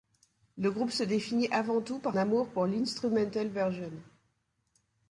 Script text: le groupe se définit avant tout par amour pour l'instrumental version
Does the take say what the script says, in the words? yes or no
yes